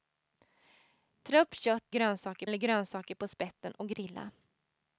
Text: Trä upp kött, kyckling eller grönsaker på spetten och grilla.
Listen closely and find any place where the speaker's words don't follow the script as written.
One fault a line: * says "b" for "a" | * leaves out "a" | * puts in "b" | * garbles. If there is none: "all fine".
* says "grönsaker" for "kyckling"